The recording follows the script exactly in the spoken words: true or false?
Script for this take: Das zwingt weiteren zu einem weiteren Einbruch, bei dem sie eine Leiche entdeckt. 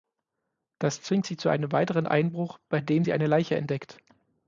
false